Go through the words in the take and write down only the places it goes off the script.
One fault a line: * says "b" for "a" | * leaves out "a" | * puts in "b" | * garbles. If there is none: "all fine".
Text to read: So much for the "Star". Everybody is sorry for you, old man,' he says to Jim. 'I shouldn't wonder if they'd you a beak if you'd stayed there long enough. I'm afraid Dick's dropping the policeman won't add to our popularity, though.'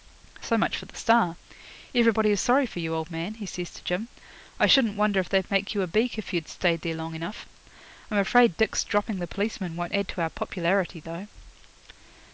* puts in "make"